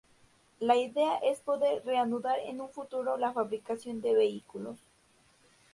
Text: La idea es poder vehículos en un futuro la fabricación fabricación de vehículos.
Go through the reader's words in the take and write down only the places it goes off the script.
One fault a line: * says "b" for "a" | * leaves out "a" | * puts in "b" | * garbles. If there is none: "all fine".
* says "reanudar" for "vehículos"
* leaves out "fabricación"